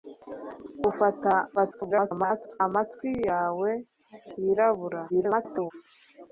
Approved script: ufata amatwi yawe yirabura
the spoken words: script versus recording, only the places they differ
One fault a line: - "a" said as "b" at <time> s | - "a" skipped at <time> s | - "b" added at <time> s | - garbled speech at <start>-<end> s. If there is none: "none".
- garbled speech at 1.6-2.6 s
- garbled speech at 5.1-5.7 s